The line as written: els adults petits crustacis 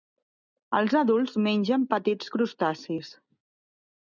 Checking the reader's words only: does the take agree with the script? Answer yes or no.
no